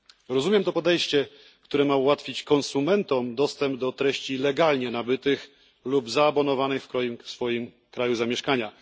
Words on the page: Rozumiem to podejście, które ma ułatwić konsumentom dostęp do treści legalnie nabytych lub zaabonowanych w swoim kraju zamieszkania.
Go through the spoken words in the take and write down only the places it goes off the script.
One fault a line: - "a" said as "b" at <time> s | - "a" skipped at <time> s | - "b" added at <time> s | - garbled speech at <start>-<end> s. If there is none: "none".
none